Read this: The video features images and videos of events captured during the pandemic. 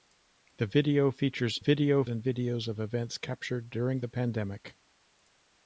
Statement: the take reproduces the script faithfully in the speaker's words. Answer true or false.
false